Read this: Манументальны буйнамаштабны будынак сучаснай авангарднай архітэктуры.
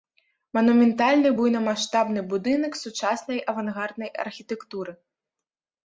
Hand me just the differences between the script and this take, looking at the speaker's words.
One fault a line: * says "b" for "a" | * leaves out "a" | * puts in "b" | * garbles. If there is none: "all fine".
all fine